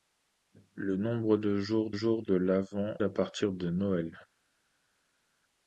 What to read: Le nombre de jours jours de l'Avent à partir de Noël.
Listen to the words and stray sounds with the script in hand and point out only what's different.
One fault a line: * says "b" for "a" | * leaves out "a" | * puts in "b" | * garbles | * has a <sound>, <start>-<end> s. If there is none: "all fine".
all fine